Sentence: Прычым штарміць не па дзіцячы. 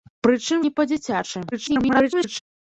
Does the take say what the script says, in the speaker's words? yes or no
no